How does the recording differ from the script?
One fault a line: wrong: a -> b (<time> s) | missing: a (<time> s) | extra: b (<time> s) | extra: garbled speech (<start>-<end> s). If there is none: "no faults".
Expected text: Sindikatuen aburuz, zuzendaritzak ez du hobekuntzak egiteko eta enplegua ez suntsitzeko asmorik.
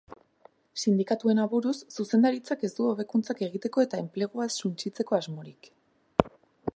no faults